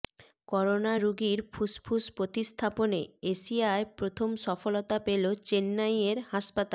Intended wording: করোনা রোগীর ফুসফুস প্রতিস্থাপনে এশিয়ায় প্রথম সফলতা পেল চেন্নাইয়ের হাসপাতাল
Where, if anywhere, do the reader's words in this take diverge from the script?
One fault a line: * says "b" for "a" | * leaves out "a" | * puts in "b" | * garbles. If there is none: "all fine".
all fine